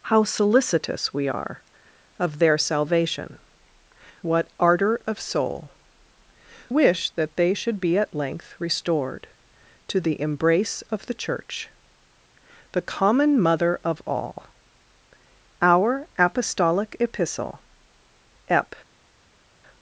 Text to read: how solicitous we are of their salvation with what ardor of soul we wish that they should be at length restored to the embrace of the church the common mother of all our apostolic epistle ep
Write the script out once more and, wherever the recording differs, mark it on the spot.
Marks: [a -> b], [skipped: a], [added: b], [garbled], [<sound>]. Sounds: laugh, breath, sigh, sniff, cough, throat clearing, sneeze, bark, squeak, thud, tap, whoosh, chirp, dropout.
how solicitous we are of their salvation [skipped: with] what ardor of soul [skipped: we] wish that they should be at length restored to the embrace of the church the common mother of all our apostolic epistle ep